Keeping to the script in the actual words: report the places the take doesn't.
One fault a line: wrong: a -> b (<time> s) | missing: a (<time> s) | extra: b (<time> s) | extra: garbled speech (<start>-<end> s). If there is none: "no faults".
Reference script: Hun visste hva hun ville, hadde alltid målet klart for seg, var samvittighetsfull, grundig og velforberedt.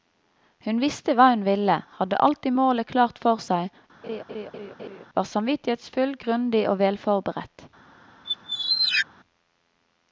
no faults